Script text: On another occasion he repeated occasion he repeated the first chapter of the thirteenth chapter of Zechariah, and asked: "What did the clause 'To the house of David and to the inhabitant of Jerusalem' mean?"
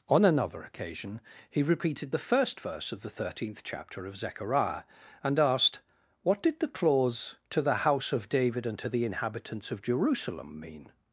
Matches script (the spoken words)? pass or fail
fail